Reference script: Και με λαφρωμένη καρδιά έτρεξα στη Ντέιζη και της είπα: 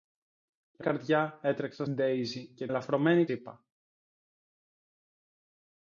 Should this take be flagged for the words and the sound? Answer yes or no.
yes